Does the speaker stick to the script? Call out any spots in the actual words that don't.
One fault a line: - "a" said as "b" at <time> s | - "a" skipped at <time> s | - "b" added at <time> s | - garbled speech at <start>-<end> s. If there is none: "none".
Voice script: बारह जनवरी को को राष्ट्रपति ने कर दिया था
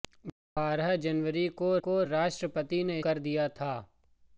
none